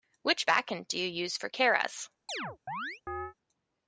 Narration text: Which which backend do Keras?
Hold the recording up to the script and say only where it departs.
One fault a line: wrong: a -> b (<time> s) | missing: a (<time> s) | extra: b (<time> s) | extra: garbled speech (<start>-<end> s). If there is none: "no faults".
missing: which (0.5 s)
extra: you use for (1.0 s)